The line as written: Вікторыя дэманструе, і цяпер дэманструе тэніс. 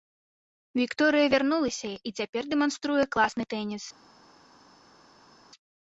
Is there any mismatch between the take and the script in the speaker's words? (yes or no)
yes